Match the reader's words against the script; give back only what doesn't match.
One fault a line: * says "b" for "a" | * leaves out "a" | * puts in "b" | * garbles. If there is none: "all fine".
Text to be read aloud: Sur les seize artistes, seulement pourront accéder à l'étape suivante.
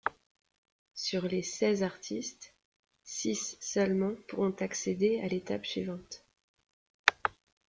* puts in "six"